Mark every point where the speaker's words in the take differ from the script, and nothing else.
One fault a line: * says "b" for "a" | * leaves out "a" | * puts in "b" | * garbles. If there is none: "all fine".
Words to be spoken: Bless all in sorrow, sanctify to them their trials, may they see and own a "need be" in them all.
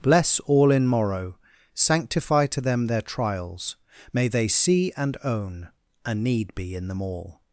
* says "morrow" for "sorrow"